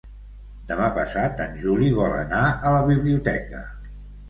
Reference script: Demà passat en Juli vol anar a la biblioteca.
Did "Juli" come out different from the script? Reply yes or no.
no